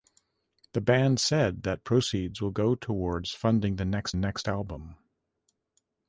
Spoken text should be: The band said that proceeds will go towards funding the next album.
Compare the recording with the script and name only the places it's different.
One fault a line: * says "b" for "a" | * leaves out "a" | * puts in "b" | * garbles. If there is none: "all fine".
* puts in "next"